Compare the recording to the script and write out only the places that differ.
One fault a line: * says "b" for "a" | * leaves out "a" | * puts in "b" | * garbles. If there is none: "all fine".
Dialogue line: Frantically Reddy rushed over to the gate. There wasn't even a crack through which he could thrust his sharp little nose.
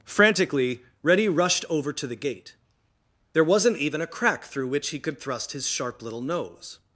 all fine